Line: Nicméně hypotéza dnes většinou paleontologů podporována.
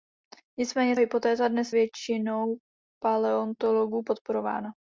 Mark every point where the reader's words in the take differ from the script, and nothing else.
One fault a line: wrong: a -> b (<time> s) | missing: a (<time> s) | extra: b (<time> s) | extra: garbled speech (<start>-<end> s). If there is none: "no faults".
no faults